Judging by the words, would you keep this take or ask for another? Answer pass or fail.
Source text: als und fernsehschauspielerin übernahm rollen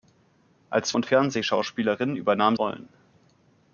pass